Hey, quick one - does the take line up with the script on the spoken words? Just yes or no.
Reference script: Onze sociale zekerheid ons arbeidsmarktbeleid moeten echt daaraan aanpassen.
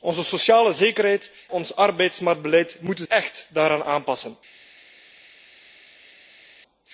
yes